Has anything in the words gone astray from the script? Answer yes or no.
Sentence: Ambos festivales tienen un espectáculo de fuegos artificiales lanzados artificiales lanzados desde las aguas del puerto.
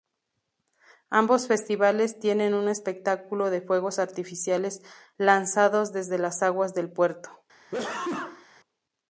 yes